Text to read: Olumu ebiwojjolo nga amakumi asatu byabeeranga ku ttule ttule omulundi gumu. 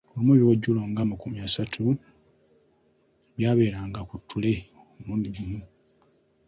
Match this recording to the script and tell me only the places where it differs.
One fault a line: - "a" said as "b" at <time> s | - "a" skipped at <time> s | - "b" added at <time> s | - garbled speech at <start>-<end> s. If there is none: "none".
- "ttule" skipped at 4.5 s